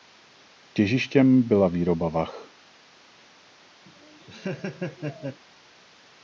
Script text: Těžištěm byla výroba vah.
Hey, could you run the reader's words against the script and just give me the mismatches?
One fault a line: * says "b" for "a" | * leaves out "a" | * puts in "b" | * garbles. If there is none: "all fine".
all fine